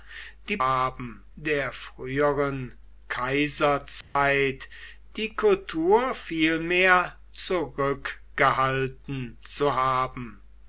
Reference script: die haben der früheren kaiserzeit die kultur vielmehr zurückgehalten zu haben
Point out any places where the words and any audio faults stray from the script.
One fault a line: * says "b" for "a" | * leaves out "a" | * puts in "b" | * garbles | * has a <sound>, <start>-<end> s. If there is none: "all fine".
* has a dropout, 4.0-4.2 s